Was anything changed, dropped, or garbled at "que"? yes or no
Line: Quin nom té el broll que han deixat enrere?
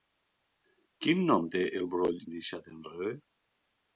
yes